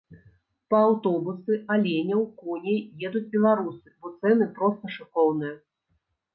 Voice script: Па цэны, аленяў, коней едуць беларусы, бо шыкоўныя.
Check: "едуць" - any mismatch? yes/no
no